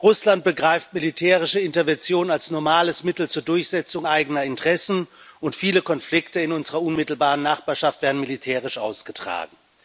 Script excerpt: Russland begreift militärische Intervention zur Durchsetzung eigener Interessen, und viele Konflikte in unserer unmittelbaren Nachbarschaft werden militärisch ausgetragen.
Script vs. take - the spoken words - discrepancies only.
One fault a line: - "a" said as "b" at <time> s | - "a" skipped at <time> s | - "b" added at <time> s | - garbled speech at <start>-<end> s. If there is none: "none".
- "als normales Mittel" added at 2.3 s